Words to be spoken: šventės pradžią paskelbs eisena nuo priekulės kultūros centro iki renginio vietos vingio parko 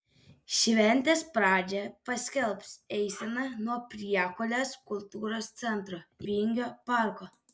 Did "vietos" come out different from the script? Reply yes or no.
yes